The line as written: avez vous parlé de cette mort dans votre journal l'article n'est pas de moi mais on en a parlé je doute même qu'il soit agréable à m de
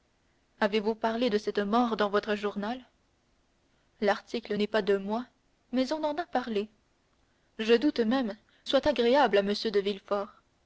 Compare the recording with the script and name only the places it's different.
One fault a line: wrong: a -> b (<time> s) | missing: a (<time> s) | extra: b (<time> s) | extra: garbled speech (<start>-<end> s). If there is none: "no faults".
missing: qu'il (8.4 s)